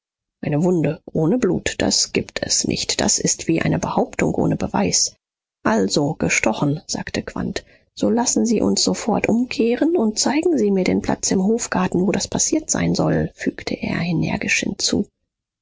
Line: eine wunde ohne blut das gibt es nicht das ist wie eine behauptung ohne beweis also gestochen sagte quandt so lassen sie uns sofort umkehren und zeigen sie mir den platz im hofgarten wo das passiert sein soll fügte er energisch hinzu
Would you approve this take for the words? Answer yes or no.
yes